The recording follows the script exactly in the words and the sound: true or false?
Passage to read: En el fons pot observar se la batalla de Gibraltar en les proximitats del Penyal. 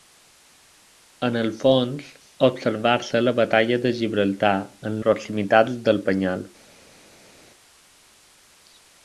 false